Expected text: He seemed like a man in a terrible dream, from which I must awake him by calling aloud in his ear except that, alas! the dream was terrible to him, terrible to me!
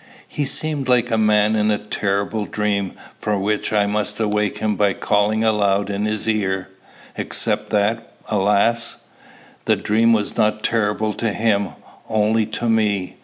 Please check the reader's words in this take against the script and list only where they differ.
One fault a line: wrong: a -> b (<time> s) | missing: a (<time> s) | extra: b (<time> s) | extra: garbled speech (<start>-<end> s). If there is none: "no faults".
extra: not (10.3 s)
wrong: terrible -> only (12.1 s)